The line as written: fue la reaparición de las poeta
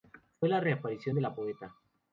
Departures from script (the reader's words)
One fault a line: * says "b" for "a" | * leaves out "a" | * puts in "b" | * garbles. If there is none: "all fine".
* says "la" for "las"